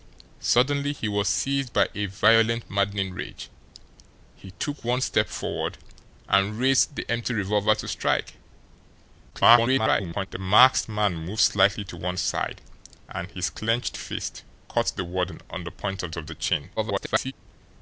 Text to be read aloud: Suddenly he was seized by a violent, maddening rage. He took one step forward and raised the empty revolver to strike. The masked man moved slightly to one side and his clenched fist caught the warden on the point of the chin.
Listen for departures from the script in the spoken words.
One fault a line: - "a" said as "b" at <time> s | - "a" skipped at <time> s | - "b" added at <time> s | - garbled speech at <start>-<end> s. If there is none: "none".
- garbled speech at 9.3-10.3 s
- "of" added at 16.1 s
- garbled speech at 16.8-17.3 s